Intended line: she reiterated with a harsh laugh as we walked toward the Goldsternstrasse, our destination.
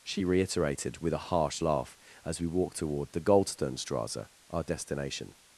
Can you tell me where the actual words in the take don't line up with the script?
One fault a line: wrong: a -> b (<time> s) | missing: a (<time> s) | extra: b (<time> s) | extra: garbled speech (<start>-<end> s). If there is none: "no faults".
no faults